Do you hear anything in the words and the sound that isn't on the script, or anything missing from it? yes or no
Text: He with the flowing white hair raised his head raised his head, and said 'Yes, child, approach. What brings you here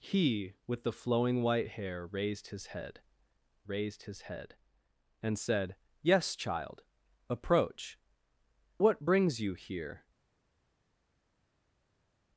no